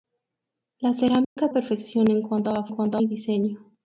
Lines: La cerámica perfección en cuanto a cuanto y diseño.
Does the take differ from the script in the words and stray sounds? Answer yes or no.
yes